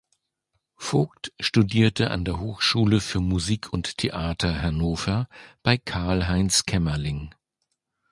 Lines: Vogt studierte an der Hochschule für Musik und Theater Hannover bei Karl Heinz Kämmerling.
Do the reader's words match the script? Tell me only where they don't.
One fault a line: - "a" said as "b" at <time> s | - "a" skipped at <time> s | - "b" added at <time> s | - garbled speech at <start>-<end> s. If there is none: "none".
none